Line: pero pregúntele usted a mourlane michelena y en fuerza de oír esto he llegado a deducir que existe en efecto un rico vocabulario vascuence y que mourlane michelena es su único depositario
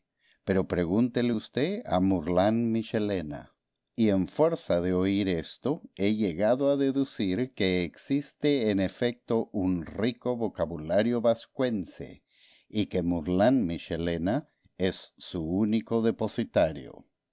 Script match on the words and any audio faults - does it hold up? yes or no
yes